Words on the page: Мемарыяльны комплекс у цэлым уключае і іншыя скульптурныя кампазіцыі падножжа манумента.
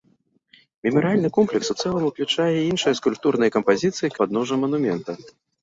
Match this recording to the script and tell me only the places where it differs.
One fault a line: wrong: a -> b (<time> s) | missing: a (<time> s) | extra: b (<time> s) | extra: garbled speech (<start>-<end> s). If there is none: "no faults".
no faults